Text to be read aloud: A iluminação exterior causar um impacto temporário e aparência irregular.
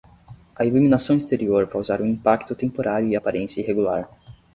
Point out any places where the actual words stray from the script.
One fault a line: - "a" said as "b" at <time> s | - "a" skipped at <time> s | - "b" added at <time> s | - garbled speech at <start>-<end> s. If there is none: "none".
none